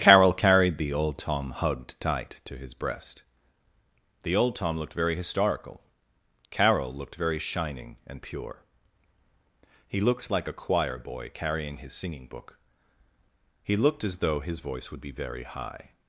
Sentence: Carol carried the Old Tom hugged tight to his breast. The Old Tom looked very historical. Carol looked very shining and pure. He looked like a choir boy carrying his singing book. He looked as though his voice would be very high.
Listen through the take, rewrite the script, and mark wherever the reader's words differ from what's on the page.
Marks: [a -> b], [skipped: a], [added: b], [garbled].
Carol carried the Old Tom hugged tight to his breast. The Old Tom looked very historical. Carol looked very shining and pure. He looked like a choir boy carrying his singing book. He looked as though his voice would be very high.